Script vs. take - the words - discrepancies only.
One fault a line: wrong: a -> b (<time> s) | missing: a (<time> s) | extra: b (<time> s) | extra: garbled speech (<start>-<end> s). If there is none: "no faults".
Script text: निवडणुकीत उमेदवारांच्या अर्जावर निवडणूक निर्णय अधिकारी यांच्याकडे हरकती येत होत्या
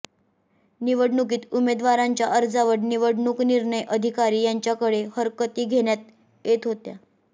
extra: घेण्यात (5.7 s)